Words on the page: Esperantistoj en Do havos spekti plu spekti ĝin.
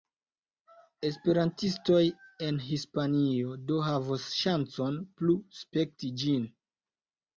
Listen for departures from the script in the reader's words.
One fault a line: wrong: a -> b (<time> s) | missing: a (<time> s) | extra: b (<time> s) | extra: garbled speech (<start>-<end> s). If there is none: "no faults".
extra: Hispanio (2.7 s)
wrong: spekti -> ŝancon (4.4 s)